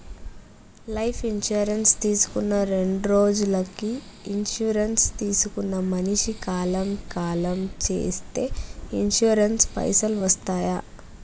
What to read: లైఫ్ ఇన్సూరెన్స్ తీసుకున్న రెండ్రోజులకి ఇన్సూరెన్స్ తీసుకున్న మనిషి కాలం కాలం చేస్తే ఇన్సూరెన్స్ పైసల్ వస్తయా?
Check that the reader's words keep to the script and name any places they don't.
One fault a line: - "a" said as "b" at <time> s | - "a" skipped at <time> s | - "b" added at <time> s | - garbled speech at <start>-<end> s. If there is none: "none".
none